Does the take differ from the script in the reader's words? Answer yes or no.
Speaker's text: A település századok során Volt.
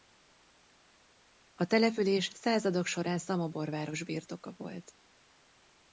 yes